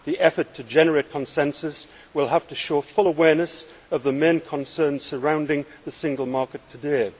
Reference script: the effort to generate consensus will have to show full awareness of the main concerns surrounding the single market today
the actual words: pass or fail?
pass